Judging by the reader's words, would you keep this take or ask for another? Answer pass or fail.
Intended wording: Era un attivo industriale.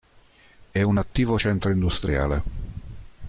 fail